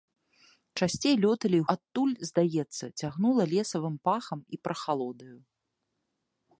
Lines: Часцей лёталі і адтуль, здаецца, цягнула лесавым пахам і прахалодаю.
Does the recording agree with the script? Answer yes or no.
yes